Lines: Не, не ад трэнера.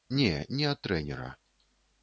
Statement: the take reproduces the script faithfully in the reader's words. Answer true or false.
true